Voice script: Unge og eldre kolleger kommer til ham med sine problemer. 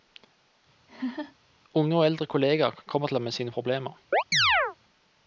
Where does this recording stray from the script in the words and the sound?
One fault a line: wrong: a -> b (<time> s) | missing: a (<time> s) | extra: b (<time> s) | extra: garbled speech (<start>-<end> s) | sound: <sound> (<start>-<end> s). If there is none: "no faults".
sound: laugh (0.9-1.4 s)
sound: chirp (4.1-4.8 s)